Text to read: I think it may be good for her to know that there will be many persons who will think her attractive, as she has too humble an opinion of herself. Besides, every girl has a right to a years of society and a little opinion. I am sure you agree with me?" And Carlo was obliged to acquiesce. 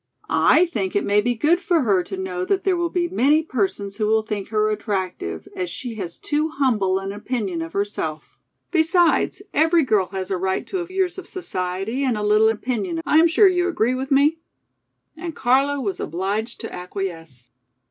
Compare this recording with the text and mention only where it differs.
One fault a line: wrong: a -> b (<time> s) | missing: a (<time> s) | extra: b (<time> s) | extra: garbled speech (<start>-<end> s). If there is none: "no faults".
no faults